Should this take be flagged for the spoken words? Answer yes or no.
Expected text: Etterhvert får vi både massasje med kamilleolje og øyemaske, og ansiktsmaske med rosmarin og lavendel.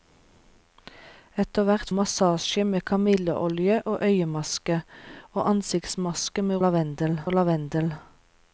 yes